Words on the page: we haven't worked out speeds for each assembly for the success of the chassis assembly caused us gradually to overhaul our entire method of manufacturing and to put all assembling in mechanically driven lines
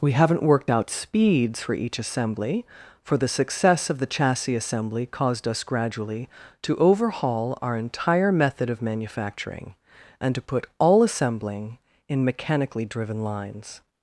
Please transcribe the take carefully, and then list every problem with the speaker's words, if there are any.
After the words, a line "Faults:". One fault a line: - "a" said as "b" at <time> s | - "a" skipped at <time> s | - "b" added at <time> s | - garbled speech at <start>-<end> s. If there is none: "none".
we haven't worked out speeds for each assembly for the success of the chassis assembly caused us gradually to overhaul our entire method of manufacturing and to put all assembling in mechanically driven lines
Faults:
none